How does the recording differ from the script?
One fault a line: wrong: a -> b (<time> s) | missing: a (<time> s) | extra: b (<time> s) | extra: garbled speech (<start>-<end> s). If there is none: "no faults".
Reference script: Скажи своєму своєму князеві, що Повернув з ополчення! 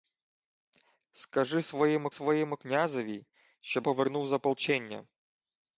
no faults